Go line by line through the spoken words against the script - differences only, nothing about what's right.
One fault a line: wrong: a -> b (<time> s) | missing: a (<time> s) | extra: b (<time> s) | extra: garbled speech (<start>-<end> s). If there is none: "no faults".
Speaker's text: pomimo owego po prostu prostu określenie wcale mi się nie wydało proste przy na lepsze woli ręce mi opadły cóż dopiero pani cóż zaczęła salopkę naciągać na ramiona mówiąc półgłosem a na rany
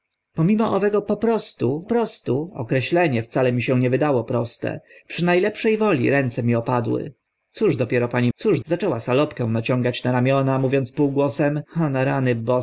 no faults